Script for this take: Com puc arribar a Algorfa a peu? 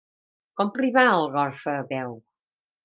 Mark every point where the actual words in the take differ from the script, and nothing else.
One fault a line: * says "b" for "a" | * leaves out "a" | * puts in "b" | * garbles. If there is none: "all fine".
* leaves out "puc"